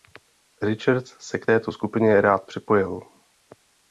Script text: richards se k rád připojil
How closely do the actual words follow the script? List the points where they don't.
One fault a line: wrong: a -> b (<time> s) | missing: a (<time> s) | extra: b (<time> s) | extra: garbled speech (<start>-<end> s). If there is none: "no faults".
extra: této skupině (1.4 s)